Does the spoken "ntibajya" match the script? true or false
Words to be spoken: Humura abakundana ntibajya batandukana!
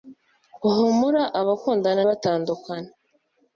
false